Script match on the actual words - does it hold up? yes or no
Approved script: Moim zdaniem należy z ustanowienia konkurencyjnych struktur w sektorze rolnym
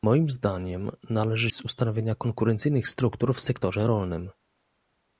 yes